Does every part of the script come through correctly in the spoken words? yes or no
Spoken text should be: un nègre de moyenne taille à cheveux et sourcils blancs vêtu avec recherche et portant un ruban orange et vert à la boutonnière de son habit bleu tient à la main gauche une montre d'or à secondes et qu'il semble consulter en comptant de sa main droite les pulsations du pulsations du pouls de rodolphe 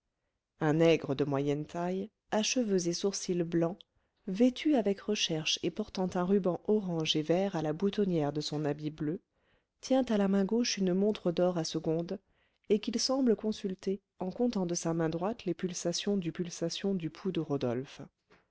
yes